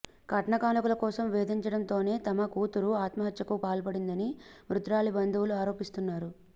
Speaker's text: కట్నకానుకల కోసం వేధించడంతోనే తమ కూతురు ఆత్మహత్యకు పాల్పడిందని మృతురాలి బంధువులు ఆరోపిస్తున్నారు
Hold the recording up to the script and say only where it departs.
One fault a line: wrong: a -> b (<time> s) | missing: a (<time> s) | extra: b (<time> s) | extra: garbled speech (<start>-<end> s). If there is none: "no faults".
no faults